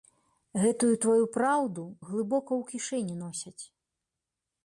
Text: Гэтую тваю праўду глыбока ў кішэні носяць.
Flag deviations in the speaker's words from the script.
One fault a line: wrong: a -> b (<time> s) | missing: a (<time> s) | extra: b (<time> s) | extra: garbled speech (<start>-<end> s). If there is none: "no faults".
no faults